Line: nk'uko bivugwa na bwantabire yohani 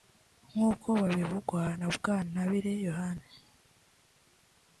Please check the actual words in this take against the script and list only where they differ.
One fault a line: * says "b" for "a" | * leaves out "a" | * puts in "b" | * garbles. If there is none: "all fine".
all fine